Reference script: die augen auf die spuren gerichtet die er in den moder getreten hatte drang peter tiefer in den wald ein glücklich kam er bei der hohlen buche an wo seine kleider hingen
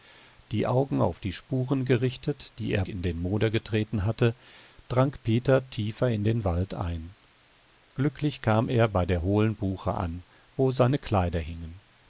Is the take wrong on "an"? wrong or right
right